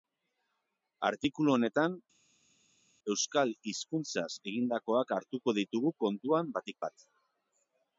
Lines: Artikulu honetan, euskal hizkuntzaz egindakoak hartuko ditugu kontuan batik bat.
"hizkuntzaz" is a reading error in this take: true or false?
false